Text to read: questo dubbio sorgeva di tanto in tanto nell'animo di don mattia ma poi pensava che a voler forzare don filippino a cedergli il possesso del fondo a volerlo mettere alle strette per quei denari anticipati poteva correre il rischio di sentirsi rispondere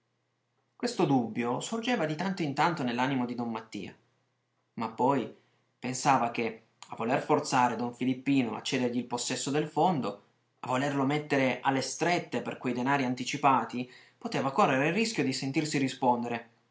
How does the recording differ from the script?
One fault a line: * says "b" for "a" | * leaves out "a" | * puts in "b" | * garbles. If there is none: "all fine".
all fine